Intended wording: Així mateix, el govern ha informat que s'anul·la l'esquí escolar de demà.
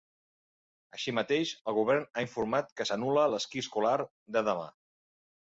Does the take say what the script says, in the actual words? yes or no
yes